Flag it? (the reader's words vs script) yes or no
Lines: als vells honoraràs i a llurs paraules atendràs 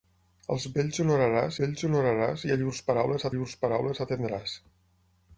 yes